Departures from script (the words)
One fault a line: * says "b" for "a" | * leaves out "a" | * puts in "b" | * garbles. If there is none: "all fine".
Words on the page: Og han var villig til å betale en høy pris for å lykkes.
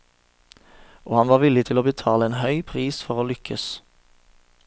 all fine